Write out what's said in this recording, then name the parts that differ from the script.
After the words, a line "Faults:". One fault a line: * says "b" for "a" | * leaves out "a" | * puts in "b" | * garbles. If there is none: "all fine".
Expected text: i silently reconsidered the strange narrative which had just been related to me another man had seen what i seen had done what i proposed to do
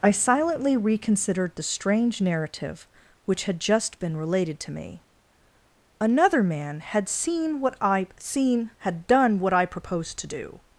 i silently reconsidered the strange narrative which had just been related to me another man had seen what i seen had done what i proposed to do
Faults:
all fine